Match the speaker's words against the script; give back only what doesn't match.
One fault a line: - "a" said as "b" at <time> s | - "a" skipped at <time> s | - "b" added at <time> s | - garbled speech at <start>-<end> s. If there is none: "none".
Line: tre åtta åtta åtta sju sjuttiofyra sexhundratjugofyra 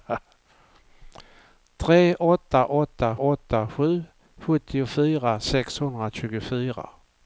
none